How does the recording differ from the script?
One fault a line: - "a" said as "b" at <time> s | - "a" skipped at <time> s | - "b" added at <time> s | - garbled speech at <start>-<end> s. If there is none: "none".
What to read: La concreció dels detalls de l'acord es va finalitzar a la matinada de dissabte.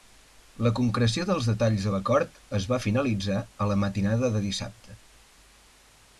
none